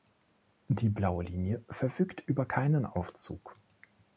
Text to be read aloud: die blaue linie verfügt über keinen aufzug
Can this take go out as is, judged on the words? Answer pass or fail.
pass